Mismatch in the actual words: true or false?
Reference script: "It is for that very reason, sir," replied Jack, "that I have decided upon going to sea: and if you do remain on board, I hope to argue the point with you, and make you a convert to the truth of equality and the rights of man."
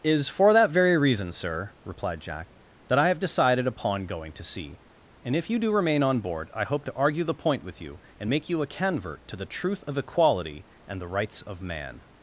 true